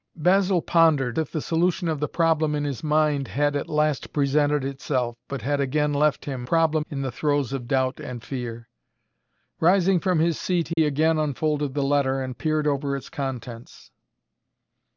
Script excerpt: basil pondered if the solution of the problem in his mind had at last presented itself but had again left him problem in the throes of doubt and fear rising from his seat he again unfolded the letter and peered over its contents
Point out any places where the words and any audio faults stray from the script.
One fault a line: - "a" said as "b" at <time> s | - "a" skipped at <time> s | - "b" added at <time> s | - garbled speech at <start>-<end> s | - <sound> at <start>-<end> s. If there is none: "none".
- dropout at 10.7-10.8 s